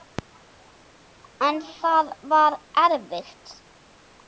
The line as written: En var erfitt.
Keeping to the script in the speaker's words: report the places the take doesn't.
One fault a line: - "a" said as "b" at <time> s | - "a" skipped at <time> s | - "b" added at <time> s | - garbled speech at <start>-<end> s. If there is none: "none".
- "það" added at 1.7 s